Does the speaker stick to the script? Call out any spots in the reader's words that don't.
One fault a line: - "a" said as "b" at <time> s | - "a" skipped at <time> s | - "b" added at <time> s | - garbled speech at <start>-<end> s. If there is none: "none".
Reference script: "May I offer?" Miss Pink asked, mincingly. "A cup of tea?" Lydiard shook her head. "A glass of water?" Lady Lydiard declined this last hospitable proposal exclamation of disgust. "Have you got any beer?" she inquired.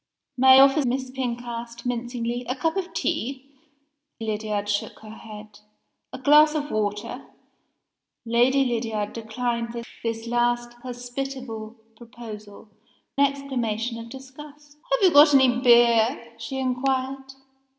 none